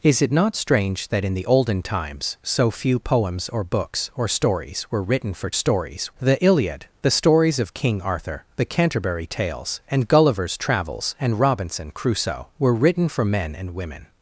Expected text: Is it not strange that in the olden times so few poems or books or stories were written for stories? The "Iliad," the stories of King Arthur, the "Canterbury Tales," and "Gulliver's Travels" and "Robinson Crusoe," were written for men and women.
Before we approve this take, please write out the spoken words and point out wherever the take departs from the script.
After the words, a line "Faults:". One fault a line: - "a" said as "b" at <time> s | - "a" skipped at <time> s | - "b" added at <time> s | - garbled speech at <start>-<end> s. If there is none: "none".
Is it not strange that in the olden times so few poems or books or stories were written for stories? The "Iliad," the stories of King Arthur, the "Canterbury Tales," and "Gulliver's Travels" and "Robinson Crusoe," were written for men and women.
Faults:
none